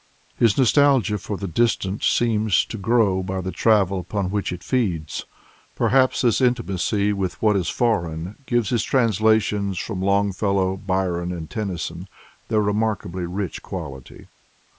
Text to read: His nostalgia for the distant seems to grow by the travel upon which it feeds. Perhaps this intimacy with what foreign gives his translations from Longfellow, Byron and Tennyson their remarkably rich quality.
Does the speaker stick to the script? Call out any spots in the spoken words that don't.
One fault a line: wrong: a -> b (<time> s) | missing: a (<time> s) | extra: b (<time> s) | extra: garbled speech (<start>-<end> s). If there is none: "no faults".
extra: is (7.5 s)